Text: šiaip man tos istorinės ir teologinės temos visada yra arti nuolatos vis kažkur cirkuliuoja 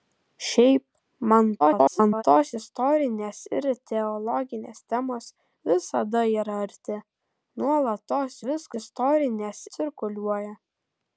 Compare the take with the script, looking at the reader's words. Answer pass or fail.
fail